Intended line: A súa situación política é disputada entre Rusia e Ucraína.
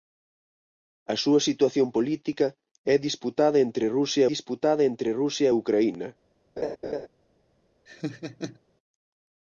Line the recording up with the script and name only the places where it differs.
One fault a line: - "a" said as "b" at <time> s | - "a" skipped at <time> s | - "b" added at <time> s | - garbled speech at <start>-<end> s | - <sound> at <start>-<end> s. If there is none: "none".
- "disputada entre Rusia" added at 4.3 s
- laugh at 6.6-7.1 s
- laugh at 7.9-8.6 s